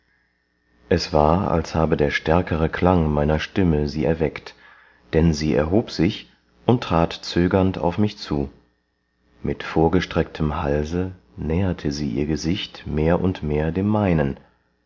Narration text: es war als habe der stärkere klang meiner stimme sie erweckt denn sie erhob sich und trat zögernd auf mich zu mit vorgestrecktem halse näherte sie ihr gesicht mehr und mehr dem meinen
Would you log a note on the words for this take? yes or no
no